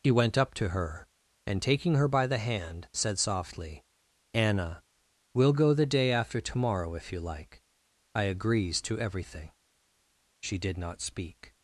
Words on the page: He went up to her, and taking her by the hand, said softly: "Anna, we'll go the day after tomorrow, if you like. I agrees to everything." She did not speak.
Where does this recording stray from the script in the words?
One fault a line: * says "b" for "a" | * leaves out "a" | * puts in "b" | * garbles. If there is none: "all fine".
all fine